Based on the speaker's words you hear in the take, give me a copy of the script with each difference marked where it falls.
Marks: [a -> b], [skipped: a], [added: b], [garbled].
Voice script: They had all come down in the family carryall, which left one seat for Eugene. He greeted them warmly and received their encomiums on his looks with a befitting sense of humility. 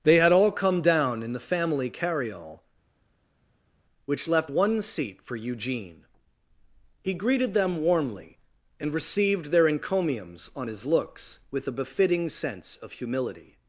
They had all come down in the family carryall, which left one seat for Eugene. He greeted them warmly and received their encomiums on his looks with a befitting sense of humility.